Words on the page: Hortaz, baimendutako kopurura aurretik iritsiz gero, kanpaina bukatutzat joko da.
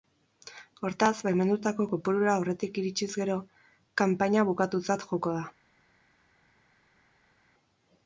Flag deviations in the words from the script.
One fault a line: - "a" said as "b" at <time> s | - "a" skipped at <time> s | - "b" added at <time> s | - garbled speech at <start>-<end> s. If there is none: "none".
none